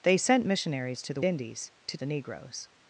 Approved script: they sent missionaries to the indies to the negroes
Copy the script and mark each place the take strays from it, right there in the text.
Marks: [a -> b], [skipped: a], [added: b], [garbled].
they sent missionaries to the indies to the negroes